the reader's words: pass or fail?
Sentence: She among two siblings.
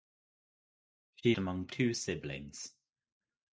pass